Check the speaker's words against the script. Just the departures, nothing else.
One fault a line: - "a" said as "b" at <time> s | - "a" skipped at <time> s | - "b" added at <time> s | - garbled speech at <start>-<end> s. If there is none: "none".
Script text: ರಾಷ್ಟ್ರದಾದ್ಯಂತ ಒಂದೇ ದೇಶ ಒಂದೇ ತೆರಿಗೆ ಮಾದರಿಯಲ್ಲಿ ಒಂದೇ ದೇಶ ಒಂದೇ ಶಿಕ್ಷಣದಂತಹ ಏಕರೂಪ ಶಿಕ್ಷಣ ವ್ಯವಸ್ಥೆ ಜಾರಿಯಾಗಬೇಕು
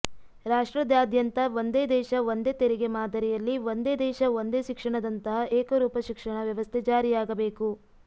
none